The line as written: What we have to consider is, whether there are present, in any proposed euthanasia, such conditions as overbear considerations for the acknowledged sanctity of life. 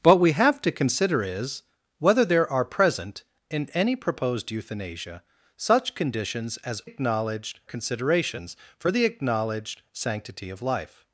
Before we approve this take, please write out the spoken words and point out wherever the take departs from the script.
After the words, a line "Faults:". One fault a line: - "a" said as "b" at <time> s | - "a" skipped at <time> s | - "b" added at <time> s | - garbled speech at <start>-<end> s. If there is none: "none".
What we have to consider is, whether there are present, in any proposed euthanasia, such conditions as acknowledged considerations for the acknowledged sanctity of life.
Faults:
- "overbear" said as "acknowledged" at 6.8 s